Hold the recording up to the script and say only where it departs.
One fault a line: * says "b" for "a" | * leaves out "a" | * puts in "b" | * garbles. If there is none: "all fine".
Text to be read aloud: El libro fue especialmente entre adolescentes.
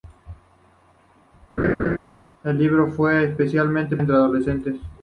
all fine